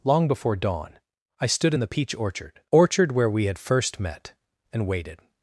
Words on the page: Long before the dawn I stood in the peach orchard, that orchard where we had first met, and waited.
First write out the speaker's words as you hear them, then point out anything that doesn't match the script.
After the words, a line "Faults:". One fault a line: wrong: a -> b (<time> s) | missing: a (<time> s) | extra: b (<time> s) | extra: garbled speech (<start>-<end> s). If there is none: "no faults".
Long before dawn I stood in the peach orchard, orchard where we had first met, and waited.
Faults:
missing: the (0.6 s)
missing: that (2.6 s)